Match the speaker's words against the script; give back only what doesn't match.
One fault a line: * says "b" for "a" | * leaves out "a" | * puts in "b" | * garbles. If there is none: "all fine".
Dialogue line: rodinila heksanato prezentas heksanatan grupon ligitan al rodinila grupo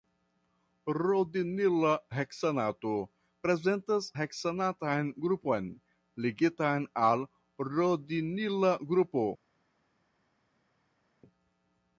all fine